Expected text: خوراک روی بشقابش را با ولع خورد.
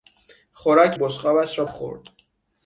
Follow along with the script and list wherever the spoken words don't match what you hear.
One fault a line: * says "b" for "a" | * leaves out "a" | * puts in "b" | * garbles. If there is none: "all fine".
* leaves out "روی"
* leaves out "با ولع"